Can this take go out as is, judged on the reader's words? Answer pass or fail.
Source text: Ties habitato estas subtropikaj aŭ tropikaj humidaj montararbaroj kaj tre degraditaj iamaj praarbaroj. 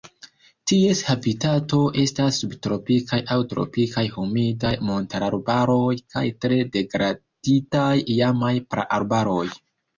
pass